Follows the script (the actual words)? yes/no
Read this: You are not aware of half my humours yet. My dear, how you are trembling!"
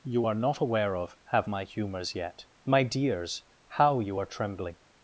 no